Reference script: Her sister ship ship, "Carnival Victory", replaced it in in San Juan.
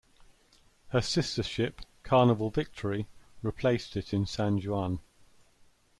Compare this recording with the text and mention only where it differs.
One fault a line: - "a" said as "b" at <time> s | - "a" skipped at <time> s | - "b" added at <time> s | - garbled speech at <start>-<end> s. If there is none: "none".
- "ship" skipped at 1.8 s
- "in" skipped at 4.2 s